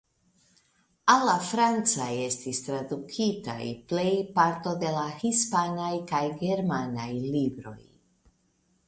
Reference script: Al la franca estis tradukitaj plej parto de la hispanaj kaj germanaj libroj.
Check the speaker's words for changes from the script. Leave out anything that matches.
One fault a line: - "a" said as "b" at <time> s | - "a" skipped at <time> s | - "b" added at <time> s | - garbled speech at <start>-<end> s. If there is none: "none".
none